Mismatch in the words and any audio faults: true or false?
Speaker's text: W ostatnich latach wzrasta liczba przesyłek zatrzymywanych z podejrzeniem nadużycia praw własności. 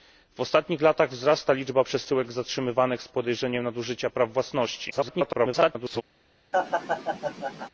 true